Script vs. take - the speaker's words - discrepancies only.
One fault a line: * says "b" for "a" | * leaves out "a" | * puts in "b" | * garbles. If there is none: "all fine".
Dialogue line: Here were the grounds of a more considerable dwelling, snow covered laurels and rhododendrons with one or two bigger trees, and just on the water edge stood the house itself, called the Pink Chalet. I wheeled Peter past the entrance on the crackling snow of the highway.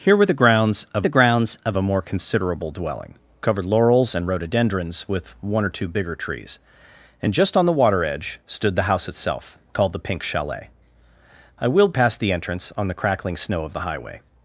* puts in "the grounds of"
* leaves out "snow"
* leaves out "Peter"